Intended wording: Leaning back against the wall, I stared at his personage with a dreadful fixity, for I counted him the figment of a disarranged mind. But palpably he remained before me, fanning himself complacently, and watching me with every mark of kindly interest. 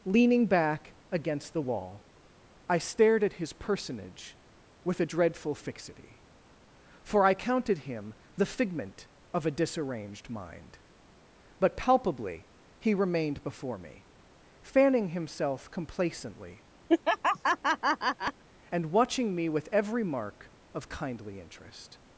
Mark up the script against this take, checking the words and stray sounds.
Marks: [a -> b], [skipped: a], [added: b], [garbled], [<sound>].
Leaning back against the wall, I stared at his personage with a dreadful fixity, for I counted him the figment of a disarranged mind. But palpably he remained before me, fanning himself complacently, [laugh] and watching me with every mark of kindly interest.